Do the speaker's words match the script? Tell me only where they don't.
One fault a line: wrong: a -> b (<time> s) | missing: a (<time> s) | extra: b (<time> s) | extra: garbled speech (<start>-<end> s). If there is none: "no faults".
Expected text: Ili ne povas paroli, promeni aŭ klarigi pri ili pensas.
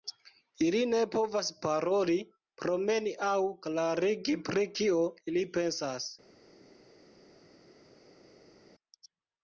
extra: kio (4.8 s)